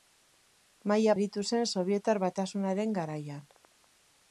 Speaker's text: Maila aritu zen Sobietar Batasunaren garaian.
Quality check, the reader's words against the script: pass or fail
pass